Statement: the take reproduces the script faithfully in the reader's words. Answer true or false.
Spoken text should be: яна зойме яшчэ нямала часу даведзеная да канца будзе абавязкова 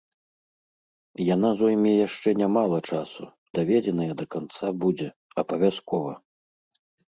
true